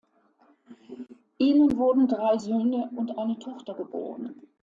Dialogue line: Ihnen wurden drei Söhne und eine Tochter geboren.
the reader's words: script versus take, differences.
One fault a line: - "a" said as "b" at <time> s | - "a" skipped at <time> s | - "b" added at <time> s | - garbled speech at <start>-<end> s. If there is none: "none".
none